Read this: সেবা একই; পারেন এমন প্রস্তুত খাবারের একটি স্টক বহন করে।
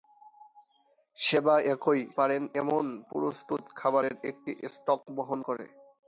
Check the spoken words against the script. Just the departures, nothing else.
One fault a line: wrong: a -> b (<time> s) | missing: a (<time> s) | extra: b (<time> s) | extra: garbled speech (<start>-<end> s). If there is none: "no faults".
no faults